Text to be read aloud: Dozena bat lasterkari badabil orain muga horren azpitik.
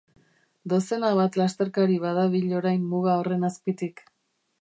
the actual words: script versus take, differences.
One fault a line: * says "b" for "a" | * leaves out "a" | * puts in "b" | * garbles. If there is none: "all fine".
all fine